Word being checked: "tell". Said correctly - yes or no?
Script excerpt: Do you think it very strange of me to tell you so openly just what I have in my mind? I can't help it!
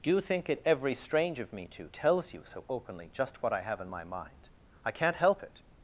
no